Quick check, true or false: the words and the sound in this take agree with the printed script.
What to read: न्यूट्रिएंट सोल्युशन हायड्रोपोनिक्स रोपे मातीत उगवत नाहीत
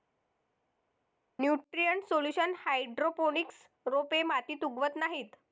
true